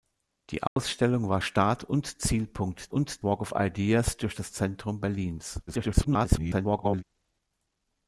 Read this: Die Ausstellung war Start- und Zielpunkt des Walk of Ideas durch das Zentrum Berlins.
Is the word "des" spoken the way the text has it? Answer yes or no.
no